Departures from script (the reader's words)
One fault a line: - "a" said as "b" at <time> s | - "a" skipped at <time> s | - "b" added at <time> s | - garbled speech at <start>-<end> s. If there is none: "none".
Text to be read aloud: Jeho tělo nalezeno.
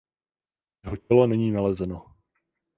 - "není" added at 1.3 s